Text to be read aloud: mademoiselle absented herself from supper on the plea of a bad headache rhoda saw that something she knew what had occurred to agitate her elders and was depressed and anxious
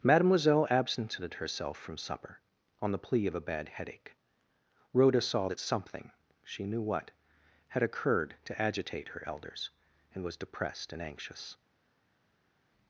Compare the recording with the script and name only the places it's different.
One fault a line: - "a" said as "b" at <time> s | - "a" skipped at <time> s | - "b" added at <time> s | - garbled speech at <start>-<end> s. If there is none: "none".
none